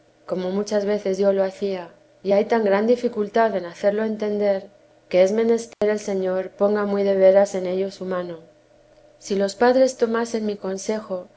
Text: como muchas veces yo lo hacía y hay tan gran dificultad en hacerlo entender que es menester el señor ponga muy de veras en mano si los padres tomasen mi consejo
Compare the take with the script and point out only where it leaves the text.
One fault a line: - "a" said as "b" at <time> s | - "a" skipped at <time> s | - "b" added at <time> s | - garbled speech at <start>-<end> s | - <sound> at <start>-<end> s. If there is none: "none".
- dropout at 5.7-5.8 s
- "ello su" added at 7.7 s